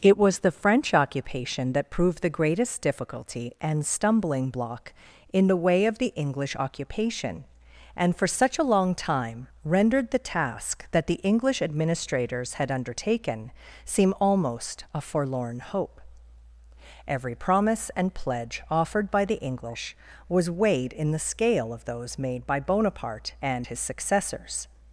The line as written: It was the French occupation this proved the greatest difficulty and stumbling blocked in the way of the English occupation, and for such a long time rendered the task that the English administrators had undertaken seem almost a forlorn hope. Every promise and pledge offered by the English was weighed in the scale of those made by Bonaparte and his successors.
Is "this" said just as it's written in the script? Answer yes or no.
no